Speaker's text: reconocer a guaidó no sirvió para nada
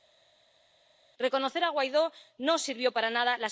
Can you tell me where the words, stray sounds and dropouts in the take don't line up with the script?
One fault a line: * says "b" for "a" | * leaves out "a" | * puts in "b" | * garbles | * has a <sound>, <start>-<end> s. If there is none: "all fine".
all fine